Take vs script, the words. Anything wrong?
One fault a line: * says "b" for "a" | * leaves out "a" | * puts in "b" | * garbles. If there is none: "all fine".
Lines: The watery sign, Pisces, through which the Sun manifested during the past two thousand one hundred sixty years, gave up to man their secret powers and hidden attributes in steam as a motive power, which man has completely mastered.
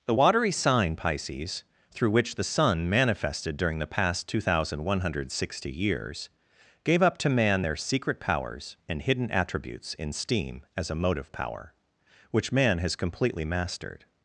all fine